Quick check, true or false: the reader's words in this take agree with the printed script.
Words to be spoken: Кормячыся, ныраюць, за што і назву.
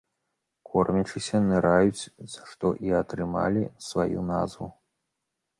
false